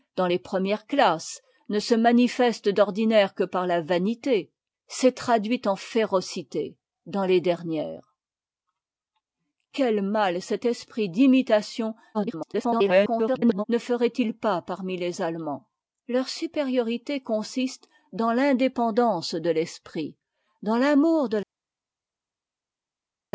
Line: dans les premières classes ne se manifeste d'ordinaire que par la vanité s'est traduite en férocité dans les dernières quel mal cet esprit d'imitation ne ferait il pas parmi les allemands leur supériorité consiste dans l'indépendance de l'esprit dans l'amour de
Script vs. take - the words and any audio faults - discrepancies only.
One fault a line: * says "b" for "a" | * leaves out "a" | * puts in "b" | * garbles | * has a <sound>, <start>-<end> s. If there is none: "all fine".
* garbles